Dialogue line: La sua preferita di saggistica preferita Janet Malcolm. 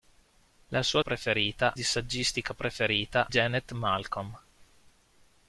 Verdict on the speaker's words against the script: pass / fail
pass